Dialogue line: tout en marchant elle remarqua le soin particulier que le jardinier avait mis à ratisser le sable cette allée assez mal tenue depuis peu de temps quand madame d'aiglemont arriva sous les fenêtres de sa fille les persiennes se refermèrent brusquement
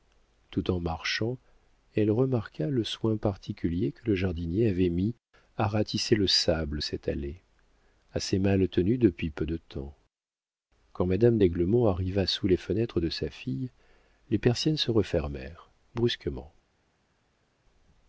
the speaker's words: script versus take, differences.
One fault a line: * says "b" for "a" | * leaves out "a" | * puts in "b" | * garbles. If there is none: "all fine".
all fine